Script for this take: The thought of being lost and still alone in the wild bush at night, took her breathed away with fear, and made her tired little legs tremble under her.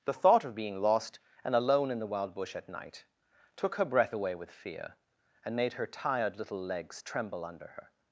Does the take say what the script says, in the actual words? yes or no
no